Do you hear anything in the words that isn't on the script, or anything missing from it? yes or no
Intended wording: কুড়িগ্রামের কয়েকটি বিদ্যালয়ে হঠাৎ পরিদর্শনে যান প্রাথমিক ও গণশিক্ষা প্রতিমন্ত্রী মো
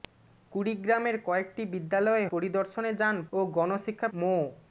yes